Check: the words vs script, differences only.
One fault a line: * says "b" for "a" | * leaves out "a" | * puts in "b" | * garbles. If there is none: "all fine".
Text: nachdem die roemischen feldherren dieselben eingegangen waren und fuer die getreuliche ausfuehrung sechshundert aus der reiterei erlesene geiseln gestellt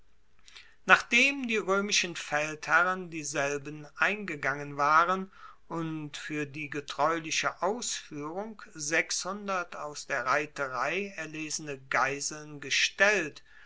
all fine